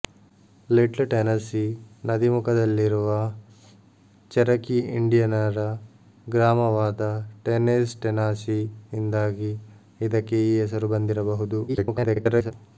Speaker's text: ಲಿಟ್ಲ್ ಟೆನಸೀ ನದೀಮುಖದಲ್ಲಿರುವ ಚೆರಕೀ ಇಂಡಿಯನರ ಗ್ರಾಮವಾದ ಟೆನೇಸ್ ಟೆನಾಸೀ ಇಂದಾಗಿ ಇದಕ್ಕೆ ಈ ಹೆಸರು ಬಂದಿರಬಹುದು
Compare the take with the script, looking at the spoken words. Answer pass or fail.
fail